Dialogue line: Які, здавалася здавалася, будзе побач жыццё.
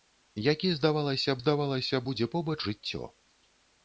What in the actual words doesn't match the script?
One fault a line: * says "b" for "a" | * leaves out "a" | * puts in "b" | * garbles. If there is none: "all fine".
all fine